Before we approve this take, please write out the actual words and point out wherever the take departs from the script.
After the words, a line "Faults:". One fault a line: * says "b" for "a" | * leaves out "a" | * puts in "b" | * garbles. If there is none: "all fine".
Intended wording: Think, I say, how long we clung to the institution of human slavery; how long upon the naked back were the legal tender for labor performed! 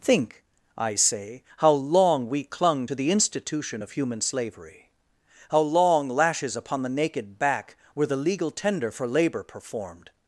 Think, I say, how long we clung to the institution of human slavery; how long lashes upon the naked back were the legal tender for labor performed!
Faults:
* puts in "lashes"